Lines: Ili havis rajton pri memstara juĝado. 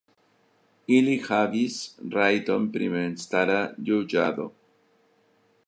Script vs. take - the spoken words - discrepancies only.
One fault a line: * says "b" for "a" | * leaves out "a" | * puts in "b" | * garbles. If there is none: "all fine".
all fine